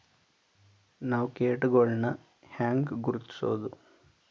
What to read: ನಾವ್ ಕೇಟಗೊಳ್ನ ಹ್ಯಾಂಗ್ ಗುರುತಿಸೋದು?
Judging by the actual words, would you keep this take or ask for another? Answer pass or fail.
pass